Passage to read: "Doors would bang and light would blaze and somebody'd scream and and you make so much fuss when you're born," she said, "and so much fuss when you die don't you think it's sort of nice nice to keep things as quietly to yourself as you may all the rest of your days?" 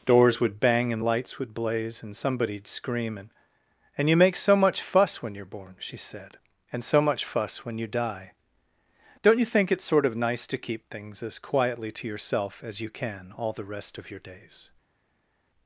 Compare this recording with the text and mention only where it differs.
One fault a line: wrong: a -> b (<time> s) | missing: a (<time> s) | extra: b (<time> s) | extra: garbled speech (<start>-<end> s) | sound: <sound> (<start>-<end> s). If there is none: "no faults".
wrong: light -> lights (1.0 s)
missing: nice (10.5 s)
wrong: may -> can (12.9 s)